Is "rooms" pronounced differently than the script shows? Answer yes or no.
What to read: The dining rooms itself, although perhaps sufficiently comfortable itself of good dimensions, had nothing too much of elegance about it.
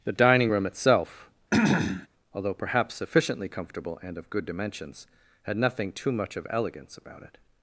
yes